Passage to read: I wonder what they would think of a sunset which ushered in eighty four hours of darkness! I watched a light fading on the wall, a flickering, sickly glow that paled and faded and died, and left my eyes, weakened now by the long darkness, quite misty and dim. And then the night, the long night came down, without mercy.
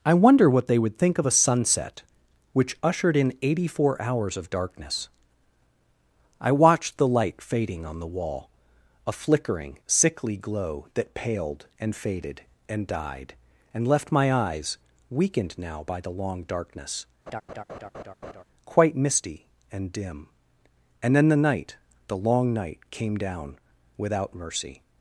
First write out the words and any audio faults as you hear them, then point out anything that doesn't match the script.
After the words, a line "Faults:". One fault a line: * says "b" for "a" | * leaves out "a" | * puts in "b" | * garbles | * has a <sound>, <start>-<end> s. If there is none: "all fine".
I wonder what they would think of a sunset which ushered in eighty four hours of darkness! I watched the light fading on the wall, a flickering, sickly glow that paled and faded and died, and left my eyes, weakened now by the long darkness, quite misty and dim. And then the night, the long night came down, without mercy.
Faults:
* says "the" for "a"
* has a laugh, 17.3-18.4 s